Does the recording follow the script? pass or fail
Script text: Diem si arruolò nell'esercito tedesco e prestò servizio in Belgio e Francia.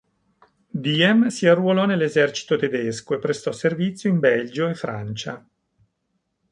pass